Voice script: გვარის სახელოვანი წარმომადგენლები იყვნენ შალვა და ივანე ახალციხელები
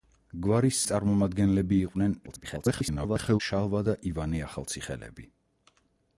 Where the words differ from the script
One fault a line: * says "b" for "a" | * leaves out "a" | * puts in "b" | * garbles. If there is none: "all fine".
* leaves out "სახელოვანი"
* garbles